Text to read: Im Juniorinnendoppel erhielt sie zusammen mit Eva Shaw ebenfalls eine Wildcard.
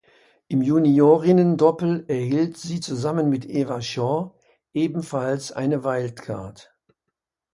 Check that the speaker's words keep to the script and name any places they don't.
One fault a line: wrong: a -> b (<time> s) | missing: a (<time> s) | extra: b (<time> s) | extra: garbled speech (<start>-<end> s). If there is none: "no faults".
no faults